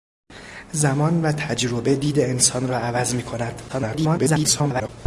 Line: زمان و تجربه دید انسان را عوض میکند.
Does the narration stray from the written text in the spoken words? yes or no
yes